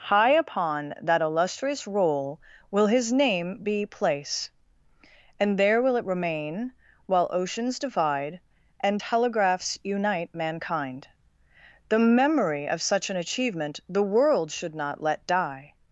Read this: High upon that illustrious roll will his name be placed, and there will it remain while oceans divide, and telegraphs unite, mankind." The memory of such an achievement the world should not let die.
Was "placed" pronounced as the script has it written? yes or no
no